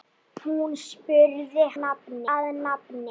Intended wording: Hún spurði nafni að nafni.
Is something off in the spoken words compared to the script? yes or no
no